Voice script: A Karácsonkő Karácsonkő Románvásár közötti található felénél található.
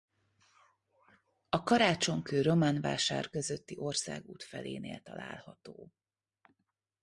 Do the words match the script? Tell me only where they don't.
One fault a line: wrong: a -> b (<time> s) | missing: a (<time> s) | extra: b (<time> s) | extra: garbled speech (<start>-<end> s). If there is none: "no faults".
missing: Karácsonkő (2.4 s)
wrong: található -> országút (3.8 s)